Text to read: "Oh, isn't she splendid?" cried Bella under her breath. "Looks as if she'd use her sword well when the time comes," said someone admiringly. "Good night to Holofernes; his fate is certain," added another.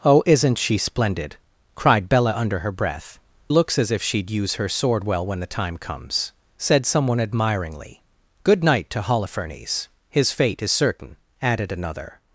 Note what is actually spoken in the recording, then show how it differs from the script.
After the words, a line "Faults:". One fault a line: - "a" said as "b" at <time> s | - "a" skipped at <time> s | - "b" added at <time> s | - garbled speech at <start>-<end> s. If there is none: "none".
"Oh, isn't she splendid?" cried Bella under her breath. "Looks as if she'd use her sword well when the time comes," said someone admiringly. "Good night to Holofernes; his fate is certain," added another.
Faults:
none